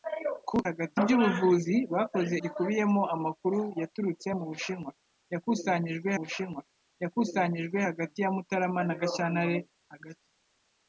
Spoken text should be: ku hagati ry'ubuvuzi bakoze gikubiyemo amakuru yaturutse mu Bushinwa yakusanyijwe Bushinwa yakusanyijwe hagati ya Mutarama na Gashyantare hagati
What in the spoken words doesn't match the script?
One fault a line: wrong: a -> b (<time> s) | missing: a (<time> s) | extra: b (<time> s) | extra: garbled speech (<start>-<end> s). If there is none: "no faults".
no faults